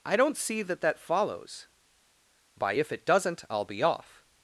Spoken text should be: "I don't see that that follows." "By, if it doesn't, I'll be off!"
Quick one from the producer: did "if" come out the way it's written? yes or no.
yes